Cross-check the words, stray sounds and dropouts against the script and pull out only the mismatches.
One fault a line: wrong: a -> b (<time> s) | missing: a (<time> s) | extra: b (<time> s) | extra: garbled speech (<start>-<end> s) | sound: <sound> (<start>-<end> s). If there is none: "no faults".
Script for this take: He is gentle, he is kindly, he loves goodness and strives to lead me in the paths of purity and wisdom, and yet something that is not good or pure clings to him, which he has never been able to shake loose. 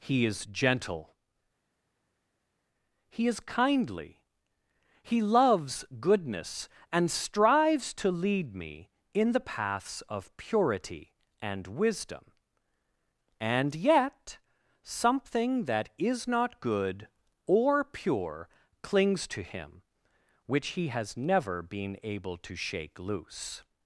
no faults